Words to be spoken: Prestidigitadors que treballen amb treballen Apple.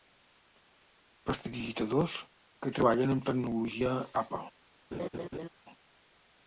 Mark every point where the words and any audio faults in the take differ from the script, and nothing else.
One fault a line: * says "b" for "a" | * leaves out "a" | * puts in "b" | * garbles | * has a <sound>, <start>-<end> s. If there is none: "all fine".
* says "tecnologia" for "treballen"
* has a laugh, 4.9-5.5 s